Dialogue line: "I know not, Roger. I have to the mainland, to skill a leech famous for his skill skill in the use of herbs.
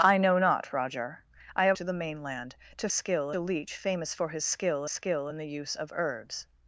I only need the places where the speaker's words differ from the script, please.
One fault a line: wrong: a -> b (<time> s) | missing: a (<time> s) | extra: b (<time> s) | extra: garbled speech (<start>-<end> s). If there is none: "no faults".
no faults